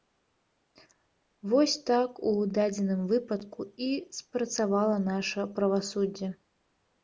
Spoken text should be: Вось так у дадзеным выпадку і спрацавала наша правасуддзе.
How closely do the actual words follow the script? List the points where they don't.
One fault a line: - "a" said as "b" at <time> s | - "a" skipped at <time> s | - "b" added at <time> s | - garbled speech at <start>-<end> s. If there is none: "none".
none